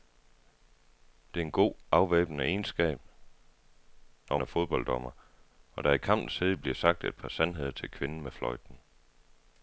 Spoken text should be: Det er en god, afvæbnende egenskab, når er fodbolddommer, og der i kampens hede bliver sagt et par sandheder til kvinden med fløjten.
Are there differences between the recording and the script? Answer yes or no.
no